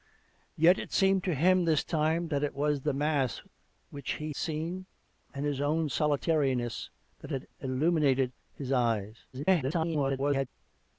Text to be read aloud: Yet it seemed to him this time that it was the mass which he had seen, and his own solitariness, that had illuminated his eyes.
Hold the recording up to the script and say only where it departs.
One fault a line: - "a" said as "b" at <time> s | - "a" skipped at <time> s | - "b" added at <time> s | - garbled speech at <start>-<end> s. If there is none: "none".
- "had" skipped at 4.3 s
- garbled speech at 9.3-10.5 s